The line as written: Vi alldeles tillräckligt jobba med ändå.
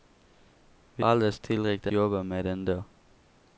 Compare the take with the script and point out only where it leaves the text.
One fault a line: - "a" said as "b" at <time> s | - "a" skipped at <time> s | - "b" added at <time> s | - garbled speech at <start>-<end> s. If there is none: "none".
none